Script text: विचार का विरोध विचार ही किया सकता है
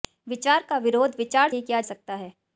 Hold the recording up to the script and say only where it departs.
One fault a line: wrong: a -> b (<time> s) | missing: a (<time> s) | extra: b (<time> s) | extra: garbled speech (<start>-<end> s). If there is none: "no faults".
no faults